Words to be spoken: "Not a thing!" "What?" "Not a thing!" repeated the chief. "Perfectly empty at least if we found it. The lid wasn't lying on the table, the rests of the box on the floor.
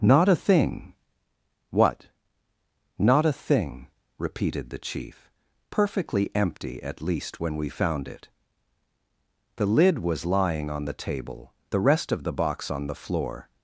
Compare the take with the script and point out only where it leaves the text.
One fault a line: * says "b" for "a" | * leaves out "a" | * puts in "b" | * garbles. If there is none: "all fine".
* says "when" for "if"
* says "was" for "wasn't"
* says "rest" for "rests"